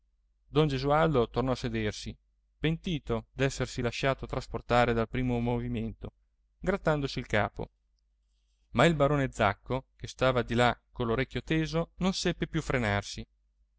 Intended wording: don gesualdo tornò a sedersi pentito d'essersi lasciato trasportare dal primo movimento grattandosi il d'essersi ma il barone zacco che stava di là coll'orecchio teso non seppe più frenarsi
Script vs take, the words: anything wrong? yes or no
yes